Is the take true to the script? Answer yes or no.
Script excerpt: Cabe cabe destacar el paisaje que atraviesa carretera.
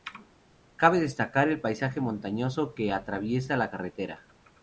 no